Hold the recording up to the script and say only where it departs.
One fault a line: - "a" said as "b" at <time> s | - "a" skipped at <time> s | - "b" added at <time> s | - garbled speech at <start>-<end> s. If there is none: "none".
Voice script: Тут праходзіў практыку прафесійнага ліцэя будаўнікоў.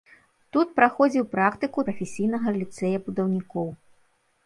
none